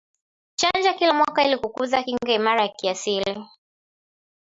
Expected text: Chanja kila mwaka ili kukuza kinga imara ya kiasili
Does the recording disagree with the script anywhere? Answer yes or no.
no